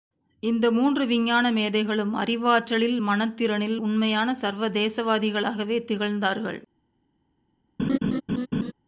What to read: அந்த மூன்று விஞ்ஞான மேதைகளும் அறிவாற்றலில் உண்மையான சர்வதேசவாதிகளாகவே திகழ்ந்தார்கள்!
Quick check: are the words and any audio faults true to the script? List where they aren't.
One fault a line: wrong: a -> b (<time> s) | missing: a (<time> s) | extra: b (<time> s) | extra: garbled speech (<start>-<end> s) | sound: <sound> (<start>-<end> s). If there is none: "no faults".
wrong: அந்த -> இந்த (0.4 s)
extra: மனத்திறனில் (3.0 s)
sound: laugh (7.8-8.7 s)